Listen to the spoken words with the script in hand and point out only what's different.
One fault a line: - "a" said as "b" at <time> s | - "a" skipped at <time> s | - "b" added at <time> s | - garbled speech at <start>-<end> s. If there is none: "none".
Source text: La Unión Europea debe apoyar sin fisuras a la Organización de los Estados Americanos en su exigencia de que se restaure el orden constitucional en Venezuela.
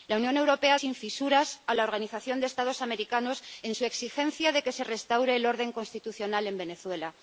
- "debe apoyar" skipped at 0.8 s